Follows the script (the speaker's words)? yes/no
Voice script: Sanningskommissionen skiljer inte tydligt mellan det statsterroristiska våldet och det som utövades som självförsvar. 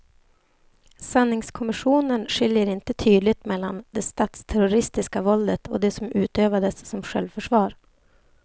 yes